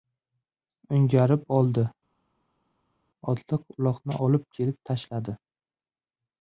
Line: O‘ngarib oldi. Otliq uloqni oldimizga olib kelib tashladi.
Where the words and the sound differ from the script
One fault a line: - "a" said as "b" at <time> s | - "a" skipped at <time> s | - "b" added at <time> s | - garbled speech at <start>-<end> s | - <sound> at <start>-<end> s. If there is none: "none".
- "oldimizga" skipped at 4.2 s